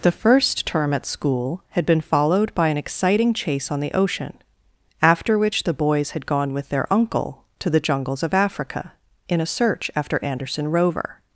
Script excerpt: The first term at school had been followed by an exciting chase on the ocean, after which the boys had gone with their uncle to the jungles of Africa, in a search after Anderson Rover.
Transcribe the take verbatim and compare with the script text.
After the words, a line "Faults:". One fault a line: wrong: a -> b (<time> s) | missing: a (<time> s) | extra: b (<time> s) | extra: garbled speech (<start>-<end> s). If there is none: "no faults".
The first term at school had been followed by an exciting chase on the ocean, after which the boys had gone with their uncle to the jungles of Africa, in a search after Anderson Rover.
Faults:
no faults